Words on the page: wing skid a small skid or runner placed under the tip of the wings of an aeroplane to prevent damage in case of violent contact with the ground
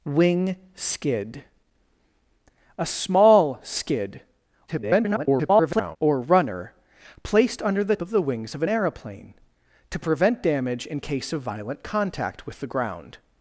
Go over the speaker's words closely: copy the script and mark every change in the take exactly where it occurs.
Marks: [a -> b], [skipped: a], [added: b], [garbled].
wing skid a small skid [garbled] or runner placed under the [skipped: tip] of the wings of an aeroplane to prevent damage in case of violent contact with the ground